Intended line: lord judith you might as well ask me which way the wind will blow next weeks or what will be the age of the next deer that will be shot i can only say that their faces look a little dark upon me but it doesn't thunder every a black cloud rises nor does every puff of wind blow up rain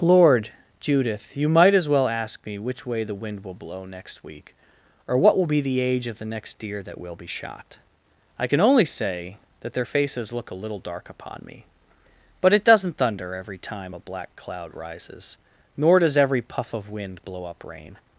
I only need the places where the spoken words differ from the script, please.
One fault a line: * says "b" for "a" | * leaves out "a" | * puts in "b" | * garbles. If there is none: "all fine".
* says "week" for "weeks"
* puts in "time"